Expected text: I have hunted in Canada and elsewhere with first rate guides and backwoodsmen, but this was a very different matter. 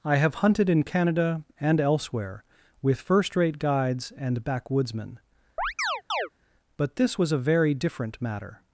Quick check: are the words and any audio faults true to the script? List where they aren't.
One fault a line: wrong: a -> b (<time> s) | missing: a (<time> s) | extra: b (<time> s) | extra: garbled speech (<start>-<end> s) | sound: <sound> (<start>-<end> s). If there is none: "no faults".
sound: chirp (5.6-6.3 s)